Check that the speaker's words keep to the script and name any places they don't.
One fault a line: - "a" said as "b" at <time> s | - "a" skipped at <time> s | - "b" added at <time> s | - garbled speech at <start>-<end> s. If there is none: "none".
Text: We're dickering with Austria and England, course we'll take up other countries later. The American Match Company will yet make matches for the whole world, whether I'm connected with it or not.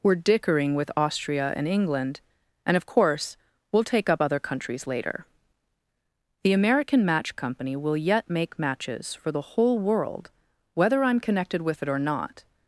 - "and of" added at 2.6 s